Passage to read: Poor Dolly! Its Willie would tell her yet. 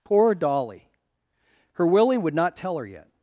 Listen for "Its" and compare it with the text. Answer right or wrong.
wrong